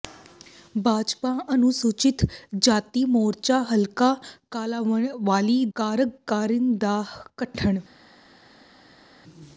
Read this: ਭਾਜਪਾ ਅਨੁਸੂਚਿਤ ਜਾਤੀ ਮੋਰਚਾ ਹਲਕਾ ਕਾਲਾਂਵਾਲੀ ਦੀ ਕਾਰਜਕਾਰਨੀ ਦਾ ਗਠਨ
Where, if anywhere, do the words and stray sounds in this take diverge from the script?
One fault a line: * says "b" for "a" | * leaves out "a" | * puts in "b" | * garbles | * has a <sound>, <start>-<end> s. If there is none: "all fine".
* leaves out "ਦੀ"